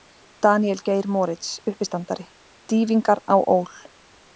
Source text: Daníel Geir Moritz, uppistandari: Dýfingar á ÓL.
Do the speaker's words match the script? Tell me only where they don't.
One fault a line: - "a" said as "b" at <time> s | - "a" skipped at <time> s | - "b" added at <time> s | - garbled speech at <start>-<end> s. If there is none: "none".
none